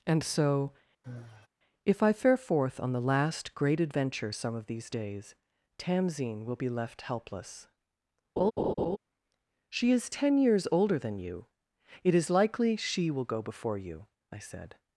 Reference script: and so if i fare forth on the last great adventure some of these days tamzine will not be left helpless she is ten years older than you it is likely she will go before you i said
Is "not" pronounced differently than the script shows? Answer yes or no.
yes